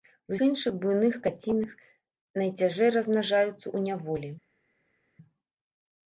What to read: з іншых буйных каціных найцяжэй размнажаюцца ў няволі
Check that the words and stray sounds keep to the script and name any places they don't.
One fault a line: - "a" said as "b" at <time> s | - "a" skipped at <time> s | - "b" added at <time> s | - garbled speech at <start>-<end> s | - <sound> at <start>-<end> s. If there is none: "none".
none